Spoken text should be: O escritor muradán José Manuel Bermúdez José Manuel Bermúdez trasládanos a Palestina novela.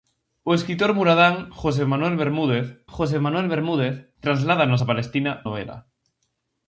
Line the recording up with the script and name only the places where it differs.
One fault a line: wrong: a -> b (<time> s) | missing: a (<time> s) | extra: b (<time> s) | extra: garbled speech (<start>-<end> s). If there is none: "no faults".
no faults